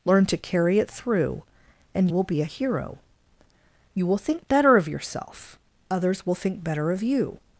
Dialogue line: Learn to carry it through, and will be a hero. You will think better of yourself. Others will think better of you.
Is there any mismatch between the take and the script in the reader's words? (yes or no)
no